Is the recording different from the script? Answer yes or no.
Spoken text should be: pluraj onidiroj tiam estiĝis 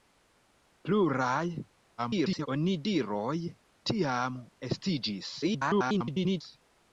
yes